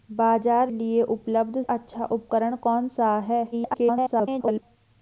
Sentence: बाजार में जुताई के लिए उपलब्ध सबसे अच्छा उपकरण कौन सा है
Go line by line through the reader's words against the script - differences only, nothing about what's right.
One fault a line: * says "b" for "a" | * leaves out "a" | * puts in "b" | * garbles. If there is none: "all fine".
* leaves out "में जुताई के"
* leaves out "सबसे"
* garbles